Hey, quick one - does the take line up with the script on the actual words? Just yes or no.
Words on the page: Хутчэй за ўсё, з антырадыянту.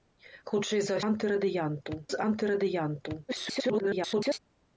no